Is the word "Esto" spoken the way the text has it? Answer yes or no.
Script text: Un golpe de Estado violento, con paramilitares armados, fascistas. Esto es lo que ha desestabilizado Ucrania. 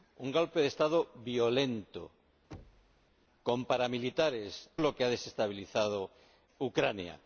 no